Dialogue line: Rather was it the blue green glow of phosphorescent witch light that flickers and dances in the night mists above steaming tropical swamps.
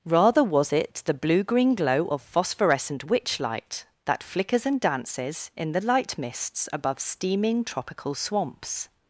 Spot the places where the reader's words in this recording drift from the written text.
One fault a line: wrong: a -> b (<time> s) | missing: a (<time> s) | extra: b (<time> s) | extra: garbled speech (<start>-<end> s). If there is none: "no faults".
wrong: night -> light (5.8 s)